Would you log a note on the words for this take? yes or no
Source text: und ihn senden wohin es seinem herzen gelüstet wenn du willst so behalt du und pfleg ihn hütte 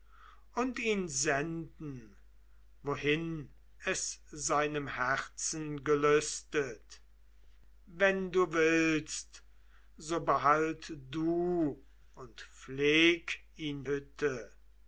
no